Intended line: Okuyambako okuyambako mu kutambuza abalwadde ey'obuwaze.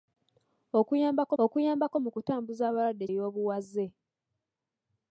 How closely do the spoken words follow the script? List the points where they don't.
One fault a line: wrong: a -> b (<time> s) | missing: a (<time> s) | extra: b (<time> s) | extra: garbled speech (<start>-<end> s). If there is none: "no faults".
no faults